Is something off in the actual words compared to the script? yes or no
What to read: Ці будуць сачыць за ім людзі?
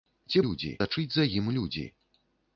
yes